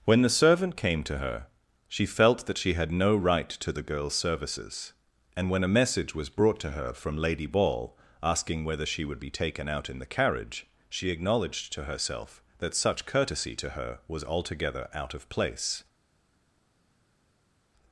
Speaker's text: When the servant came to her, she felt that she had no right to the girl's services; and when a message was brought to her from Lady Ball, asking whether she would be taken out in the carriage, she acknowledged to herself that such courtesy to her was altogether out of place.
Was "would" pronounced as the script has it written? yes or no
yes